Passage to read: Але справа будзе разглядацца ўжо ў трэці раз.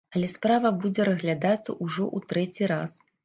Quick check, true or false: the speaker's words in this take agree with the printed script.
true